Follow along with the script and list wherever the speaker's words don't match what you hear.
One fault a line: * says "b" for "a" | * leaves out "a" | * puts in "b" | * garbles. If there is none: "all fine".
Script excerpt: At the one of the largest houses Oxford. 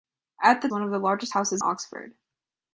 all fine